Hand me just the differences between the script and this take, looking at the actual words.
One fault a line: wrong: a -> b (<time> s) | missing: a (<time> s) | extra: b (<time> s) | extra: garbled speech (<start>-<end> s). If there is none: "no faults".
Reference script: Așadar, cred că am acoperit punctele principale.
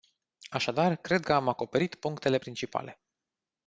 no faults